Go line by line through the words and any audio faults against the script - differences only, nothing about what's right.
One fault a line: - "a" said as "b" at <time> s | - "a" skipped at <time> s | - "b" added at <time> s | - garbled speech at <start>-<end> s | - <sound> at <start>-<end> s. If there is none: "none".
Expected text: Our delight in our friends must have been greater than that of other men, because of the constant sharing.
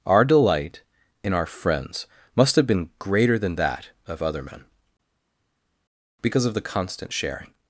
none